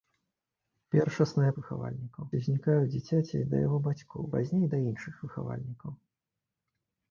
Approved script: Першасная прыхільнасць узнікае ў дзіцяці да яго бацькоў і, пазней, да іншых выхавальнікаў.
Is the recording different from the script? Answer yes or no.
yes